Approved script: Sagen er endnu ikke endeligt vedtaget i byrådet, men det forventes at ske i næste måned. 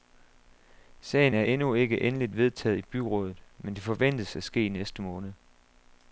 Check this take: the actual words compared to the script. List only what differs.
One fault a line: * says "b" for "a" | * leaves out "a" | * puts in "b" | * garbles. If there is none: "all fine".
all fine